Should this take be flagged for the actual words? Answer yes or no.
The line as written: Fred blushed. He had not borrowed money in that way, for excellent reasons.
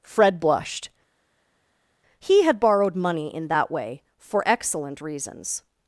yes